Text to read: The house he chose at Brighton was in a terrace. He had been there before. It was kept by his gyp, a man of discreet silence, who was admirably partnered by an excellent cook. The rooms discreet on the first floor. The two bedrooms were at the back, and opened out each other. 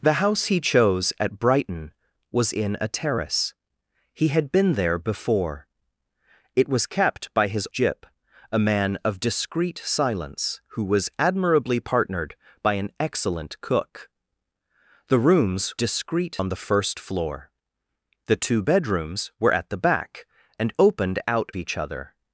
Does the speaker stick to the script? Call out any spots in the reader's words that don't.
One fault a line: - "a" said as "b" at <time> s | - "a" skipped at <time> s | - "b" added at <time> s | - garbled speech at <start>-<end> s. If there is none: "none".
none